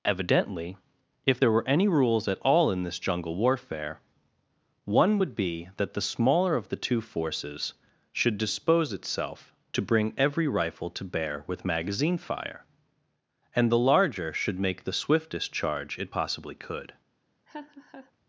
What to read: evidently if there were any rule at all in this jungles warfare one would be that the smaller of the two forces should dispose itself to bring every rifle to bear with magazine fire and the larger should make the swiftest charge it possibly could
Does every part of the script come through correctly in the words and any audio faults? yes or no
no